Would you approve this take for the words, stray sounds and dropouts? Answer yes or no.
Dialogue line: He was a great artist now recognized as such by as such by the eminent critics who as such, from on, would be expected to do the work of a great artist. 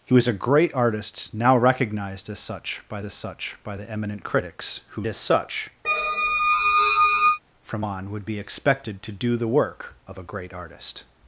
no